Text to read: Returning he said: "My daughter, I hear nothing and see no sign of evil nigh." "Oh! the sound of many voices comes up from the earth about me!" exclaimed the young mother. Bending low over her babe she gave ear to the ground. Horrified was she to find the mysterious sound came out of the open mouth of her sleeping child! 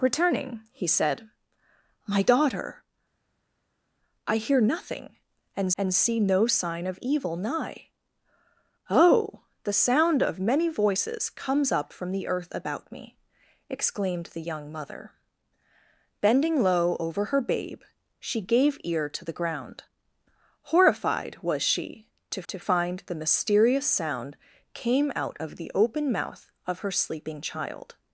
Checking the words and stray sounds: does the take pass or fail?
fail